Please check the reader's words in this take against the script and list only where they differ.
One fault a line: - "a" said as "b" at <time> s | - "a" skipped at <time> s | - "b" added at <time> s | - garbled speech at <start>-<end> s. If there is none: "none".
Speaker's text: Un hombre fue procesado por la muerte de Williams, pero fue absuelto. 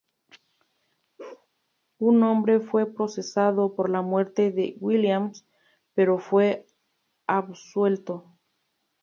none